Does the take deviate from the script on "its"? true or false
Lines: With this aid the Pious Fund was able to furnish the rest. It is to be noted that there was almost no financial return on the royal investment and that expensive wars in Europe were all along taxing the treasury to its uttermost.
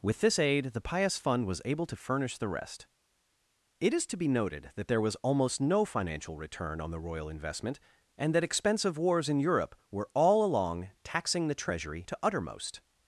true